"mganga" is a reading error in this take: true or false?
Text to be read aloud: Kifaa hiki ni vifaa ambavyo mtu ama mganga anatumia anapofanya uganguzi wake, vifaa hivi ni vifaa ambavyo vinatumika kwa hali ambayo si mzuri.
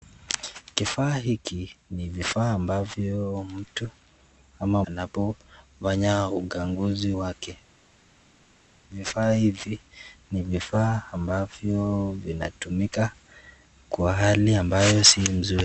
true